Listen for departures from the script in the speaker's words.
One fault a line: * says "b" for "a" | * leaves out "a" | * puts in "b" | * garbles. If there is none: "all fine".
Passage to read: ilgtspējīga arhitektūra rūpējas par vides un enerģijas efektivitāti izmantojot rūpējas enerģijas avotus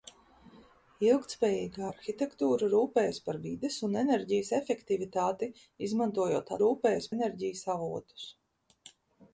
all fine